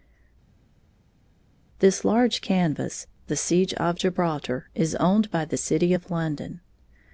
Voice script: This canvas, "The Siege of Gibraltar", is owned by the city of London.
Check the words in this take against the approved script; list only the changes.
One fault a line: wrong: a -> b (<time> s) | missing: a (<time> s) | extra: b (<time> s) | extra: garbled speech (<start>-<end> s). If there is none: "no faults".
extra: large (2.1 s)